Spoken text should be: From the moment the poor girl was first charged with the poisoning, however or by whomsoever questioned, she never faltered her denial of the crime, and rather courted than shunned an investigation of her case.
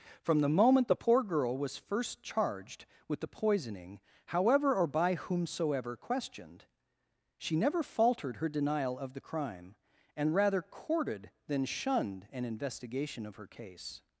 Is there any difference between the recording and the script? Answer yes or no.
no